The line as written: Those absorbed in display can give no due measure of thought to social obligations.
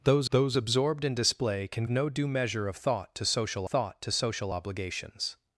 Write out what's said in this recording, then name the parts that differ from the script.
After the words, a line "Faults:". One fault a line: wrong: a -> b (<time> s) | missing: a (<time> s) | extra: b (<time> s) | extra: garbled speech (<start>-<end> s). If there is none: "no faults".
Those those absorbed in display can no due measure of thought to social thought to social obligations.
Faults:
extra: those (0.3 s)
missing: give (1.8 s)
extra: thought to social (3.6 s)